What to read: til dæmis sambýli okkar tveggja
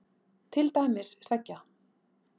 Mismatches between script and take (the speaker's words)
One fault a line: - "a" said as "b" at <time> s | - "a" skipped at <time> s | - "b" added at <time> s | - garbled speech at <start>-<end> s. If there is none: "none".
- "sambýli okkar" skipped at 1.1 s